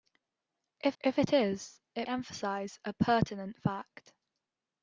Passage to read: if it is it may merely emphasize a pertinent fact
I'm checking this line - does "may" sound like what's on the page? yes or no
no